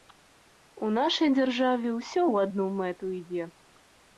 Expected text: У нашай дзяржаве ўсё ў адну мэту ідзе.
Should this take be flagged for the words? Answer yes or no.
no